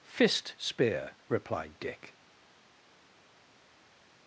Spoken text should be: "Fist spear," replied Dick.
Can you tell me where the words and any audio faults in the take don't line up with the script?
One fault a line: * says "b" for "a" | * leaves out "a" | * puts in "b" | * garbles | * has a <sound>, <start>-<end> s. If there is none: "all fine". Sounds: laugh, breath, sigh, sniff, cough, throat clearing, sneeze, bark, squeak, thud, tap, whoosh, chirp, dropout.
all fine